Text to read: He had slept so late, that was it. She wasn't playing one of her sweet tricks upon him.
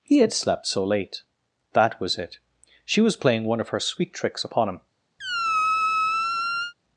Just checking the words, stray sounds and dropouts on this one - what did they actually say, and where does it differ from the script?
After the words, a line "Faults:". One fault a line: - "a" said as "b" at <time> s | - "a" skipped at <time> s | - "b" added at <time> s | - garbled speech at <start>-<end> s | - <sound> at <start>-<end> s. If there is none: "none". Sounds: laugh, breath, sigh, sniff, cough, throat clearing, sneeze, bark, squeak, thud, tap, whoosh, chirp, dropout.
He had slept so late, that was it. She was playing one of her sweet tricks upon him.
Faults:
- "wasn't" said as "was" at 3.0 s
- squeak at 5.2-6.7 s